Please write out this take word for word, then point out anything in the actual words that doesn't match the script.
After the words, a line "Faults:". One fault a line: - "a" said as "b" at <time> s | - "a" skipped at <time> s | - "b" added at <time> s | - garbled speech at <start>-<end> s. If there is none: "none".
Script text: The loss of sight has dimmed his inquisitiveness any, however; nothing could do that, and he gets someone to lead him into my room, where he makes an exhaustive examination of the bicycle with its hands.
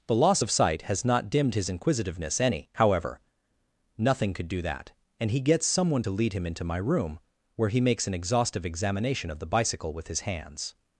The loss of sight has not dimmed his inquisitiveness any, however; nothing could do that, and he gets someone to lead him into my room, where he makes an exhaustive examination of the bicycle with his hands.
Faults:
- "not" added at 1.0 s
- "its" said as "his" at 10.1 s